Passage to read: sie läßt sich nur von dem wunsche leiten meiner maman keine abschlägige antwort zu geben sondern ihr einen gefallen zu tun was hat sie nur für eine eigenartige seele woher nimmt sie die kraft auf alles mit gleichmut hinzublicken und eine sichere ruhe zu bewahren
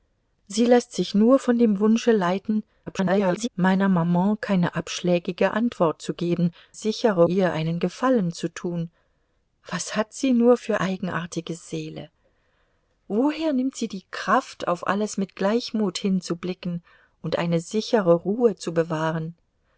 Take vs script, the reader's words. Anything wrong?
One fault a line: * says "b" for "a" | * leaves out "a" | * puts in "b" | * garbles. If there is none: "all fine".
* garbles
* says "sichere" for "sondern"
* leaves out "eine"